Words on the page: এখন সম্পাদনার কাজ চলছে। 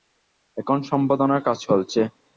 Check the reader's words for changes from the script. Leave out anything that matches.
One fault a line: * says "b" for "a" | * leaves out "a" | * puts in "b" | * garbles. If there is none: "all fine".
all fine